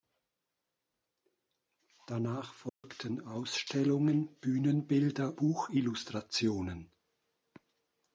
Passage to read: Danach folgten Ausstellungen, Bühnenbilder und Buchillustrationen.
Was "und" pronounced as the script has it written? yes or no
no